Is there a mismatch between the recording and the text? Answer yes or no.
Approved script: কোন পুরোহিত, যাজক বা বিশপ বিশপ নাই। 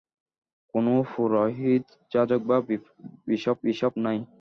no